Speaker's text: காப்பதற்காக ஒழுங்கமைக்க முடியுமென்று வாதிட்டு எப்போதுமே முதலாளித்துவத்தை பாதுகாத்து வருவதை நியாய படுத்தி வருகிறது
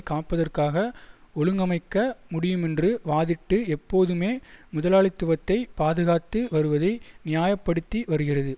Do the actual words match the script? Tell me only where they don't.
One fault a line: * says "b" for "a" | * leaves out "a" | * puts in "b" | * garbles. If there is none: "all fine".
all fine